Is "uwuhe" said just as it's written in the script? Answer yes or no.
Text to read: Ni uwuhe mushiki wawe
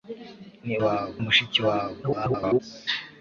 no